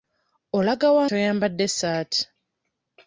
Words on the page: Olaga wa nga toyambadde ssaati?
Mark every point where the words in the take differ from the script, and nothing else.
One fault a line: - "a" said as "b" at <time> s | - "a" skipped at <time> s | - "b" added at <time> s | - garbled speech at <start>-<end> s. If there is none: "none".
- "nga" skipped at 1.0 s